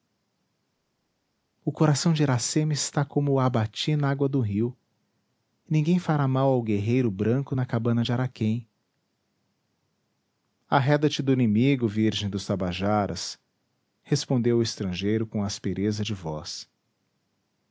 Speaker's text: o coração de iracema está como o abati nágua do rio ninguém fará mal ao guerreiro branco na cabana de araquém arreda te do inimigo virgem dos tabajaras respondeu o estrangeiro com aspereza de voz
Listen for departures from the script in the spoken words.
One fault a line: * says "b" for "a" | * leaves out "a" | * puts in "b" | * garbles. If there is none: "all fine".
all fine